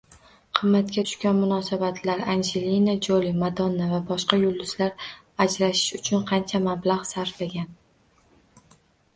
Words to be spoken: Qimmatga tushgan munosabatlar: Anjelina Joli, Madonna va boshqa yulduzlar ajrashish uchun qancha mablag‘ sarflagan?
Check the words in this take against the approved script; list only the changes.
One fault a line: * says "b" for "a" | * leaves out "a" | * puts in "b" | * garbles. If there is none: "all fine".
all fine